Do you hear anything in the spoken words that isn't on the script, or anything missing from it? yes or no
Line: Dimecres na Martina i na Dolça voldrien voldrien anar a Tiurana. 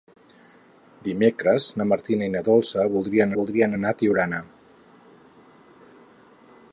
no